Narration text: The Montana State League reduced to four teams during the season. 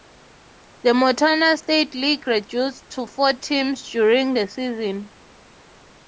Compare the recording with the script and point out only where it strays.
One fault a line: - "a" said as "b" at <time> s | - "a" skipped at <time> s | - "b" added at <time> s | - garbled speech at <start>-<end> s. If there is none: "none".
none